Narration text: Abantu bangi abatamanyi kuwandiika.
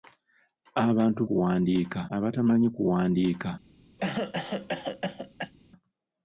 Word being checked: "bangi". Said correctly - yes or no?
no